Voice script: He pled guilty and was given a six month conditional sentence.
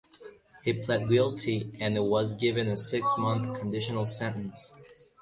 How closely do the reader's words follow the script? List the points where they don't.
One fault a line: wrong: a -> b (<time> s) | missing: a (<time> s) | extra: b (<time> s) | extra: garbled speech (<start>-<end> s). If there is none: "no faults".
no faults